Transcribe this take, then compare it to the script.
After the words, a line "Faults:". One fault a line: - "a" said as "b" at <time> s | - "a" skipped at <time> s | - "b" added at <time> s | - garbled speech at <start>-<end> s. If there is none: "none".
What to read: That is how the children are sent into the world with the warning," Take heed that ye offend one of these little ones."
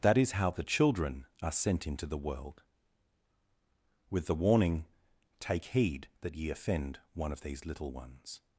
That is how the children are sent into the world with the warning," Take heed that ye offend one of these little ones."
Faults:
none